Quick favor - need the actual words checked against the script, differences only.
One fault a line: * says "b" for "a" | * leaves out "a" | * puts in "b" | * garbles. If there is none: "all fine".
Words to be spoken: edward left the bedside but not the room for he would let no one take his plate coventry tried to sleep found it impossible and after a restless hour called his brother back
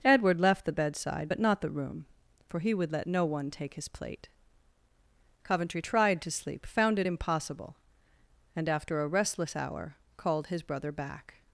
all fine